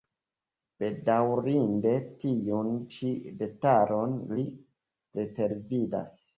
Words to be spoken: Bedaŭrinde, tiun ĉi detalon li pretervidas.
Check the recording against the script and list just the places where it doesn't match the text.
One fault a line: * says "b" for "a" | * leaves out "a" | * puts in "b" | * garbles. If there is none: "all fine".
all fine